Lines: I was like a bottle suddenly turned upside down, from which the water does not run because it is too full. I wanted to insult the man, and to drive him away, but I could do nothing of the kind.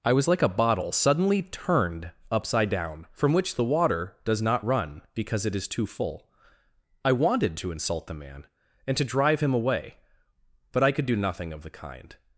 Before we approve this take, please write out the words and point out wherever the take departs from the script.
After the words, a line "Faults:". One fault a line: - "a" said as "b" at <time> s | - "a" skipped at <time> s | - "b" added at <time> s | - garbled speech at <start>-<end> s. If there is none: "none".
I was like a bottle suddenly turned upside down, from which the water does not run because it is too full. I wanted to insult the man, and to drive him away, but I could do nothing of the kind.
Faults:
none